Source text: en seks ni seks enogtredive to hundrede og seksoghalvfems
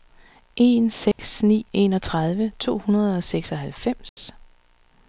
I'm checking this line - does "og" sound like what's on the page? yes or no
yes